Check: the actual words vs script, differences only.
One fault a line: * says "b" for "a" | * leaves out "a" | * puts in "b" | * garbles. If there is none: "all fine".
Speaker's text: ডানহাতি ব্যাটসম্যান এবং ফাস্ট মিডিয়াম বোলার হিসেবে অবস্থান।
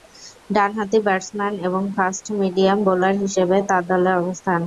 * puts in "তার দলে"